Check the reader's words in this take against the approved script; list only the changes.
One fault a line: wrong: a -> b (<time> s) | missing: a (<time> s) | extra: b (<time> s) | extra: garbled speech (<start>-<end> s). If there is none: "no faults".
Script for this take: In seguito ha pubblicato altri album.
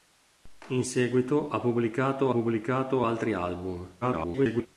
extra: pubblicato (2.3 s)
extra: garbled speech (4.0-4.7 s)